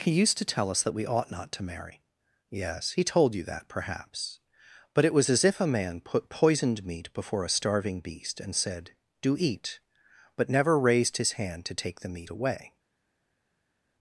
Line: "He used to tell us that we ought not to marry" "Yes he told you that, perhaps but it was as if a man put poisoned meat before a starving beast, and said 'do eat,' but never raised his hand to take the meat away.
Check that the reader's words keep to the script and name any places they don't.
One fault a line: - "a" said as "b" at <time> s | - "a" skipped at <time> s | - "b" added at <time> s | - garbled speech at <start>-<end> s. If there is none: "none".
none